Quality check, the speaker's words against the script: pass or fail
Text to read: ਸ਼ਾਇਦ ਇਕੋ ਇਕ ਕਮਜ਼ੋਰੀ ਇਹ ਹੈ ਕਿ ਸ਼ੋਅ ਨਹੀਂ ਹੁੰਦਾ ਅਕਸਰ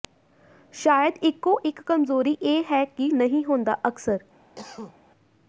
fail